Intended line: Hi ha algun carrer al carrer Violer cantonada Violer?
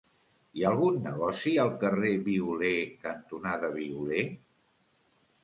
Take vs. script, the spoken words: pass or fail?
fail